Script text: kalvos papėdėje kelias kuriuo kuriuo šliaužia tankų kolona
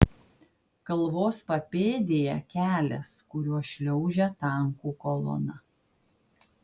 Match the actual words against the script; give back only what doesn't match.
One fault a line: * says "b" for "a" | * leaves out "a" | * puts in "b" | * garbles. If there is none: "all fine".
* leaves out "kuriuo"